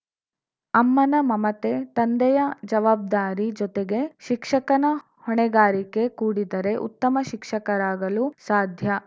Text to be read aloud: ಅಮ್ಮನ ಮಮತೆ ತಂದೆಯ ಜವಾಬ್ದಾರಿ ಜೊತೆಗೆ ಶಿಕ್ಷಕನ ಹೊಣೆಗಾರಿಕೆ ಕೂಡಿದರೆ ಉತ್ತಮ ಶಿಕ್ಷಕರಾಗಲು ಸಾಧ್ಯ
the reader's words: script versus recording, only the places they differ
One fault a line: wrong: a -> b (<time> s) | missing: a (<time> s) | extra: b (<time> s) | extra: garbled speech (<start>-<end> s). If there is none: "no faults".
no faults